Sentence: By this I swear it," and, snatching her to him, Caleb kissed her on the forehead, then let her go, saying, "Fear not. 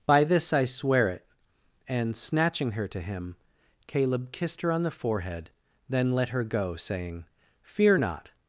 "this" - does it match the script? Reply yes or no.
yes